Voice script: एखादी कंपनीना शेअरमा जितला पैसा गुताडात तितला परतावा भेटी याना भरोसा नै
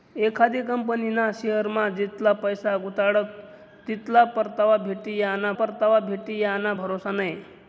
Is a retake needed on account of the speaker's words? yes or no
yes